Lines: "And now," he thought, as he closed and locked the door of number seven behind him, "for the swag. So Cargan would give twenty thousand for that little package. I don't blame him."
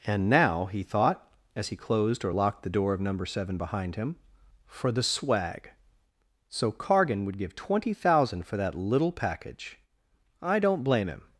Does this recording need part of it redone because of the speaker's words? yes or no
yes